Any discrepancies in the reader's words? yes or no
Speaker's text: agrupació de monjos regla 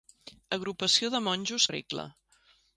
no